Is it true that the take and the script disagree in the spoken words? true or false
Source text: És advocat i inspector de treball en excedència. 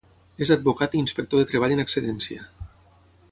false